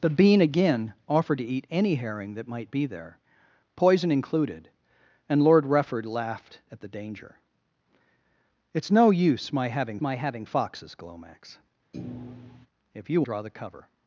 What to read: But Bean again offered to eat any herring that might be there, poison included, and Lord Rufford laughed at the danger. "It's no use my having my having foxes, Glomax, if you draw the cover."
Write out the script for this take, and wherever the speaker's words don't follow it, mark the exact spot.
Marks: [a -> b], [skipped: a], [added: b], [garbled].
But Bean again offered to eat any herring that might be there, poison included, and Lord Rufford laughed at the danger. "It's no use my having my having foxes, Glomax, if you draw the cover."